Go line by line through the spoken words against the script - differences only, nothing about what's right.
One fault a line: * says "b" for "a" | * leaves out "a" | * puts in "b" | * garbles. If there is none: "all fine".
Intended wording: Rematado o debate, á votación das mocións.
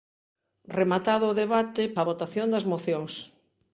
all fine